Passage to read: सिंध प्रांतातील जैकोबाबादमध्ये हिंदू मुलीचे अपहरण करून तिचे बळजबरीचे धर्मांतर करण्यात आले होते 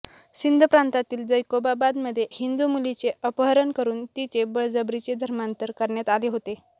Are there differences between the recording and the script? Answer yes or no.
no